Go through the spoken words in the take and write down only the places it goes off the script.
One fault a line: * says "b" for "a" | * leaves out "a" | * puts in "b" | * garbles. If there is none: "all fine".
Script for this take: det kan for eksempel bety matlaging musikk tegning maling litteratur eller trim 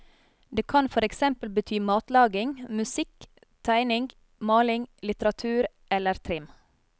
all fine